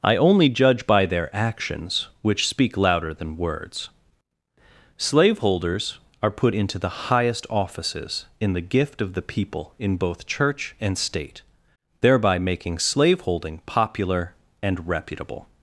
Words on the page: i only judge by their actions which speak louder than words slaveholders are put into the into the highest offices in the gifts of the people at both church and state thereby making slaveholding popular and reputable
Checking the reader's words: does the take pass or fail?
fail